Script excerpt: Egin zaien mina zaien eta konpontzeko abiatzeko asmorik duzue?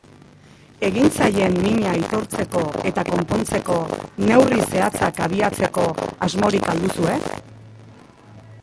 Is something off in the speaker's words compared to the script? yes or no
yes